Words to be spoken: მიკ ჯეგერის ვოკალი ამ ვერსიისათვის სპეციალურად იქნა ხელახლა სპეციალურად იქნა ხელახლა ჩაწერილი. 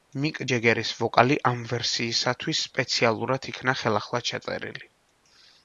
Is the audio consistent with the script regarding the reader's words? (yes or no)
no